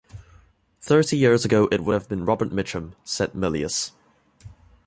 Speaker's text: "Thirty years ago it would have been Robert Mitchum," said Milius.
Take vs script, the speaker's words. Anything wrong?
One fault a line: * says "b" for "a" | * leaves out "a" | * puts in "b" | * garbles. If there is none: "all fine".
all fine